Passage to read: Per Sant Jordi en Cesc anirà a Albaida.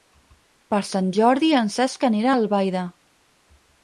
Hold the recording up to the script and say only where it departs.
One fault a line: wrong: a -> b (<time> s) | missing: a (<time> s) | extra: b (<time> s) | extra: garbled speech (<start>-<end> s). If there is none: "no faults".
no faults